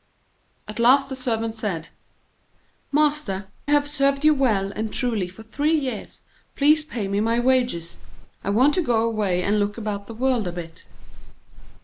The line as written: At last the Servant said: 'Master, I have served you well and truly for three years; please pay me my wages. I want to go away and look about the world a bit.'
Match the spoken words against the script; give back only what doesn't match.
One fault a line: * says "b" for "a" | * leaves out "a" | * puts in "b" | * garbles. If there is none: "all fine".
* leaves out "I"